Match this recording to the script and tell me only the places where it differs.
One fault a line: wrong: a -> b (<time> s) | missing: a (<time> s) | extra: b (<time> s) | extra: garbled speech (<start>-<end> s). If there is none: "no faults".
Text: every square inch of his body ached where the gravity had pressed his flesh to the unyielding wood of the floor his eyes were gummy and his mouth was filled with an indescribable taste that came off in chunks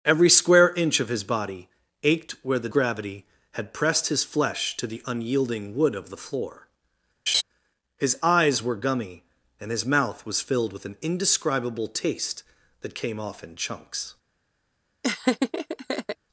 no faults